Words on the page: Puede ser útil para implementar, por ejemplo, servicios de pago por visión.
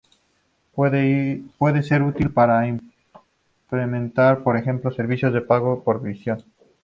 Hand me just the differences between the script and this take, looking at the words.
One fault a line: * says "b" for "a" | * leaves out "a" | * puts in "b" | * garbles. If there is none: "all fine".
all fine